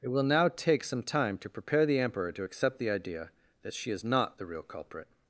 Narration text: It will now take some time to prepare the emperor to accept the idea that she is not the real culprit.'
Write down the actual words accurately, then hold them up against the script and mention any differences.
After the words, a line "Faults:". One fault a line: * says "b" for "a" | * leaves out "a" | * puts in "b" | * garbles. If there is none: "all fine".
It will now take some time to prepare the emperor to accept the idea that she is not the real culprit.'
Faults:
all fine